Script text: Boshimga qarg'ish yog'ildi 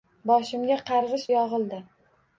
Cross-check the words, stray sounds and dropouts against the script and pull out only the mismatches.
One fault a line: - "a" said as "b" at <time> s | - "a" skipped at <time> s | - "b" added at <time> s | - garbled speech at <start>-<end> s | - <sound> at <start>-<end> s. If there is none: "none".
none